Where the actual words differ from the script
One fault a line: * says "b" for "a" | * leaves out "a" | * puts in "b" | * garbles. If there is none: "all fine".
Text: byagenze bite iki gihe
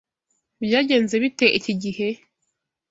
all fine